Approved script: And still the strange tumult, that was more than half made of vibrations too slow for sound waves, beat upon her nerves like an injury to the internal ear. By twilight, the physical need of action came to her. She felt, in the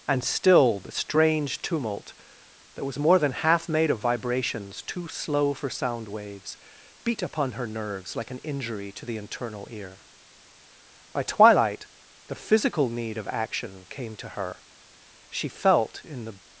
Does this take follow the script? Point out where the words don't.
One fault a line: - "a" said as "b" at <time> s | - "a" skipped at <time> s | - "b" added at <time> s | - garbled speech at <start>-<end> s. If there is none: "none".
none